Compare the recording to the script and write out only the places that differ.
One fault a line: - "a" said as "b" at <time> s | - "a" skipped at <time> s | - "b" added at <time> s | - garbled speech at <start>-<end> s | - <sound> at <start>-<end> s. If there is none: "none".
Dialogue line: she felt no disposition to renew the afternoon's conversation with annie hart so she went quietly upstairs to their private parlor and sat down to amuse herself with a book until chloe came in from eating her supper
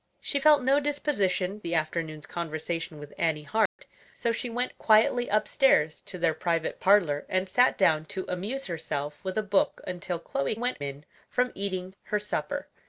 - "to renew" skipped at 1.6 s
- dropout at 3.7-3.8 s
- "came" said as "went" at 10.5 s